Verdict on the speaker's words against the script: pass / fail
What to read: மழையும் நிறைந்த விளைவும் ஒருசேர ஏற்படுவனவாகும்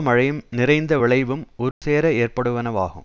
pass